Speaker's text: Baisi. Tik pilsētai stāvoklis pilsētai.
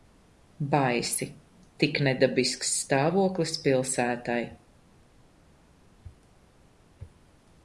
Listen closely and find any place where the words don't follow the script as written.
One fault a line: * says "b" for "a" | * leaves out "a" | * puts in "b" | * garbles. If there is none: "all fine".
* says "nedabisks" for "pilsētai"